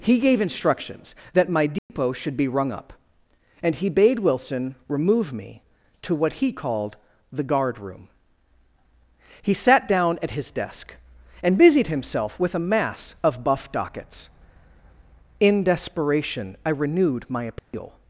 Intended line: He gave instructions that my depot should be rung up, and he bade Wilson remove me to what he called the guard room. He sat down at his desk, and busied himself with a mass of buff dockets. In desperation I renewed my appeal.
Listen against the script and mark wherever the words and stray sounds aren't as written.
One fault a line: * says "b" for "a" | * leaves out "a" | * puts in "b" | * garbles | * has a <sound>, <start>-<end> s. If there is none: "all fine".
* has a dropout, 1.8-1.9 s
* has a dropout, 17.6-17.7 s